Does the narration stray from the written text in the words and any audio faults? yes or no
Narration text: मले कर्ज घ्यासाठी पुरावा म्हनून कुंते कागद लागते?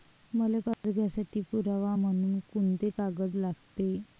yes